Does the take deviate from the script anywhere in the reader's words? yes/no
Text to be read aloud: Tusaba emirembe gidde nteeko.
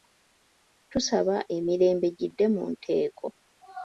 yes